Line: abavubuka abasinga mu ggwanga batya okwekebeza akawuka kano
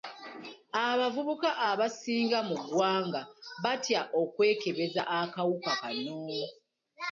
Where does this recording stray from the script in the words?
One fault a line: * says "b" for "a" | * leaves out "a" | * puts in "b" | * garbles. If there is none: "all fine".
all fine